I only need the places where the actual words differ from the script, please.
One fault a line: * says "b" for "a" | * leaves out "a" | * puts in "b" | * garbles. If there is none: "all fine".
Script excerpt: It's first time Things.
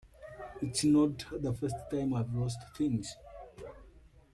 * puts in "not the"
* puts in "I've lost"